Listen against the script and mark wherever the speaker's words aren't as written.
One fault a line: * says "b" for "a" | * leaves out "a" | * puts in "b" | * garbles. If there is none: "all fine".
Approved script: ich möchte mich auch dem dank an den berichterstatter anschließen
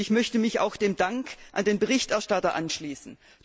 all fine